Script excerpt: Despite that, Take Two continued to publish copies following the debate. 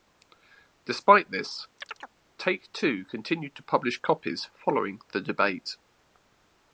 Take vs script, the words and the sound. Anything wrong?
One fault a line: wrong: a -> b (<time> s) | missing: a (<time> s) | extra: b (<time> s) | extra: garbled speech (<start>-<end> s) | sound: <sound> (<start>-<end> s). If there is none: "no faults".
wrong: that -> this (1.3 s)
sound: chirp (1.8-2.1 s)